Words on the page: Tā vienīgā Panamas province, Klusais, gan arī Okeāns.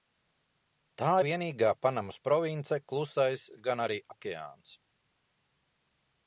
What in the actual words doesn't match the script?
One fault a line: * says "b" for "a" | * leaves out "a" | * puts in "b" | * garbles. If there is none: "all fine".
all fine